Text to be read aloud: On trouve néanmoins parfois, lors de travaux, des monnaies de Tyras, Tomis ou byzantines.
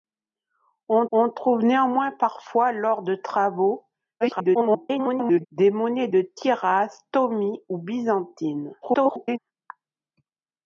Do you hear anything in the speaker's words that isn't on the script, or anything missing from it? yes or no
yes